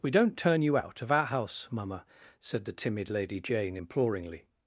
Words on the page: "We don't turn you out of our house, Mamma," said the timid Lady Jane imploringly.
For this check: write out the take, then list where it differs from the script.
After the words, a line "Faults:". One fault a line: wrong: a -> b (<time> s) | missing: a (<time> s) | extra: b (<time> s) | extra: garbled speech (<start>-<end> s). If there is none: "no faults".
"We don't turn you out of our house, Mamma," said the timid Lady Jane imploringly.
Faults:
no faults